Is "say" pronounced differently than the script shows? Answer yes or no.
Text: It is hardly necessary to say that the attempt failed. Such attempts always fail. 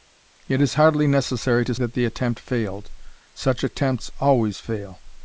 yes